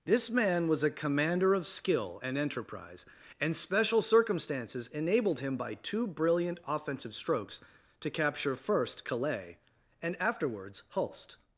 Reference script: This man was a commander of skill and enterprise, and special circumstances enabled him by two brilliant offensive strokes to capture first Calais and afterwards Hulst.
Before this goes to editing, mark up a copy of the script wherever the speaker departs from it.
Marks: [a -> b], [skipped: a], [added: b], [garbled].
This man was a commander of skill and enterprise, and special circumstances enabled him by two brilliant offensive strokes to capture first Calais and afterwards Hulst.